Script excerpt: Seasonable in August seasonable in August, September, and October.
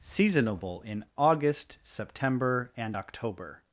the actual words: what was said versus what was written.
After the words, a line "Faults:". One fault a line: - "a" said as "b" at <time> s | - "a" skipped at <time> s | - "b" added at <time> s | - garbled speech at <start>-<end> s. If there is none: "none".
Seasonable in August, September, and October.
Faults:
- "seasonable in August" skipped at 1.8 s